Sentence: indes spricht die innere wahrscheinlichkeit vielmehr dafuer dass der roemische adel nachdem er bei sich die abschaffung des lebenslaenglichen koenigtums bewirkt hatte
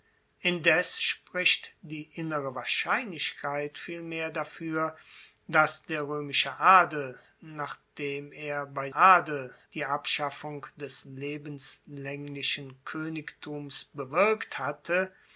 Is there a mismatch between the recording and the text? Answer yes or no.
yes